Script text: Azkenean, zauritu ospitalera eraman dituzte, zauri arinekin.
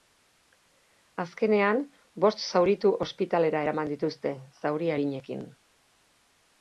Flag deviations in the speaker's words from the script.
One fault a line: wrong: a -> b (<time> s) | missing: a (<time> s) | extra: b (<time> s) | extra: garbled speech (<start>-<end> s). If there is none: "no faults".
extra: bost (2.2 s)